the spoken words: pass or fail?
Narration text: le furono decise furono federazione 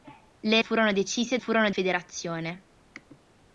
pass